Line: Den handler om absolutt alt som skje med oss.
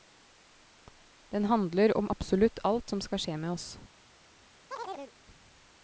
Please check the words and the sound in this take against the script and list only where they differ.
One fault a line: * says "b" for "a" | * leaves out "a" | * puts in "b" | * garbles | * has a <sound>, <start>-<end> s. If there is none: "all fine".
* puts in "skal"
* has a chirp, 4.7-5.1 s